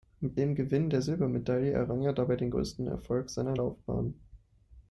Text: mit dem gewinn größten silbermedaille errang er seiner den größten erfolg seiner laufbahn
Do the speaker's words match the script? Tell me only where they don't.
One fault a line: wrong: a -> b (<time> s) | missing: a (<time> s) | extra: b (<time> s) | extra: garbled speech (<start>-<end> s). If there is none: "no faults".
wrong: größten -> der (0.9 s)
wrong: seiner -> dabei (2.1 s)